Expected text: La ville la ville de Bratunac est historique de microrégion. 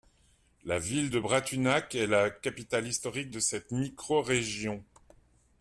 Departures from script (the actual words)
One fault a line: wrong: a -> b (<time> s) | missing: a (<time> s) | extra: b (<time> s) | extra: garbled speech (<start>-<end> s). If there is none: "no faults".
missing: la ville (1.1 s)
extra: la capitale (2.1 s)
extra: cette (3.4 s)